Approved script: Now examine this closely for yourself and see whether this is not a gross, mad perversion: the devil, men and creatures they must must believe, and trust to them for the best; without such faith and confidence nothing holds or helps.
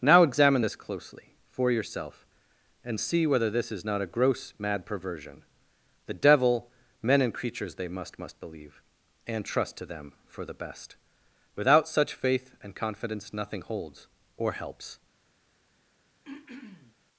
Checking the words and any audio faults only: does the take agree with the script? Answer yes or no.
no